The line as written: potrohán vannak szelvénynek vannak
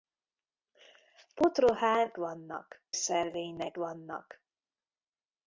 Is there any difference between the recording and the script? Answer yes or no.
no